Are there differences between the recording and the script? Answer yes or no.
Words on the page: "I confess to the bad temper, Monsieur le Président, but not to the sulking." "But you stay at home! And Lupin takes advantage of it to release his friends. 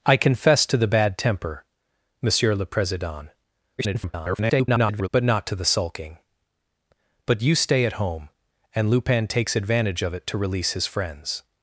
yes